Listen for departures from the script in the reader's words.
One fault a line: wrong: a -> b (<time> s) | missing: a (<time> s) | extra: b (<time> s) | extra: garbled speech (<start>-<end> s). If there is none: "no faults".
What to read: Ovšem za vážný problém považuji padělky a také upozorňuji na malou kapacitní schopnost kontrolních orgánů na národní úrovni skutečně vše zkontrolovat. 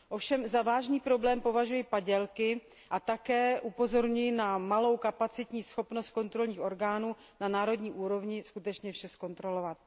no faults